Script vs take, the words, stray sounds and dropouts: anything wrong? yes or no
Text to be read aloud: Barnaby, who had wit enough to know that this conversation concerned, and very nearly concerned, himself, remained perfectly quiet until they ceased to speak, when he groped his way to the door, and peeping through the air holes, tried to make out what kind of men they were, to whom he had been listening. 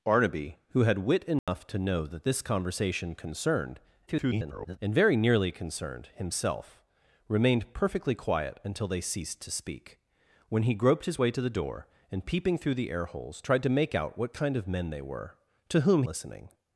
yes